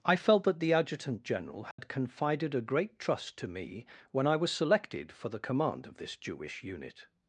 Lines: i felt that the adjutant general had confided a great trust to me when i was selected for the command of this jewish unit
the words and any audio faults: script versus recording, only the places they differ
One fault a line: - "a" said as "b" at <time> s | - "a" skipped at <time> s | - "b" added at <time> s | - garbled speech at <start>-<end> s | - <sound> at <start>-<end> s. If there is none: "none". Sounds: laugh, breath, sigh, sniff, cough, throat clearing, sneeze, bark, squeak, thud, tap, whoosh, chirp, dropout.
- dropout at 1.7-1.8 s